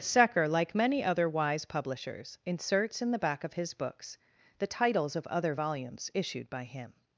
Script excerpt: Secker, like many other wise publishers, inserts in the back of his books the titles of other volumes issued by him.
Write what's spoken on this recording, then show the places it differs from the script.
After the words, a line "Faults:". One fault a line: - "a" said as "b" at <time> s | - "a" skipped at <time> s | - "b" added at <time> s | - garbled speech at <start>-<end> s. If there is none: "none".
Secker, like many other wise publishers, inserts in the back of his books the titles of other volumes issued by him.
Faults:
none